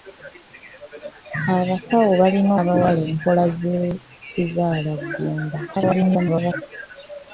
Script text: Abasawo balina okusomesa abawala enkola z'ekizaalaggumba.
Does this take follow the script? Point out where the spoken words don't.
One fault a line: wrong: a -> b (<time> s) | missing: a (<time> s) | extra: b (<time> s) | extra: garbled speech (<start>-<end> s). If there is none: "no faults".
missing: okusomesa (2.5 s)
extra: garbled speech (5.7-6.6 s)